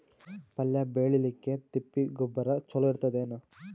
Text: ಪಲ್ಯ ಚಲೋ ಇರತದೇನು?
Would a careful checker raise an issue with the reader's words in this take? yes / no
yes